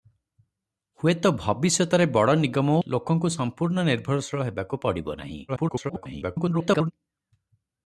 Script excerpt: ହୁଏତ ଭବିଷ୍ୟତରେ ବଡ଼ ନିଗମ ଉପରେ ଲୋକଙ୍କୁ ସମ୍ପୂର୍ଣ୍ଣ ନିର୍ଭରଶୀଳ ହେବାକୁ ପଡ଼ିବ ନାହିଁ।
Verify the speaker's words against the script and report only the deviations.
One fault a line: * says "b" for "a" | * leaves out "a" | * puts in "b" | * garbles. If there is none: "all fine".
* leaves out "ଉପରେ"
* garbles